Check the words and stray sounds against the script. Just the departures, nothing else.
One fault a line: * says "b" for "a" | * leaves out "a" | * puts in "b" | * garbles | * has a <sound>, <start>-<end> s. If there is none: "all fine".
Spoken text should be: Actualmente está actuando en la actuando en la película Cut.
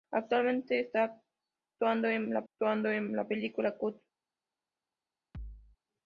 * has a thud, 5.3-5.8 s